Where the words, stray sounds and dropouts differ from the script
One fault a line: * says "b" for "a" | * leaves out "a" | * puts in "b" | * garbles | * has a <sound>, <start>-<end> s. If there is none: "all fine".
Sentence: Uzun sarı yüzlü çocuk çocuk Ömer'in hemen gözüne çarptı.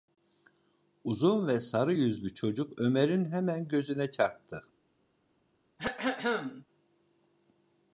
* puts in "ve"
* leaves out "çocuk"
* has a throat clearing, 5.8-6.6 s